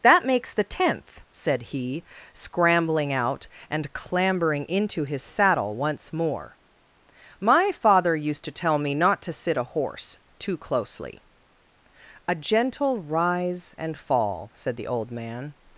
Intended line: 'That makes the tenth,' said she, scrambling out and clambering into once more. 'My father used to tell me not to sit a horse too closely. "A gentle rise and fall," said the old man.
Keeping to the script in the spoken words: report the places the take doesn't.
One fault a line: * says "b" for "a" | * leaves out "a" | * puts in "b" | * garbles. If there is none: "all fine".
* says "he" for "she"
* puts in "his saddle"